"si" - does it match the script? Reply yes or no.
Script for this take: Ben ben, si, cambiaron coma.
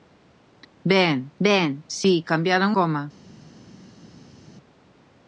yes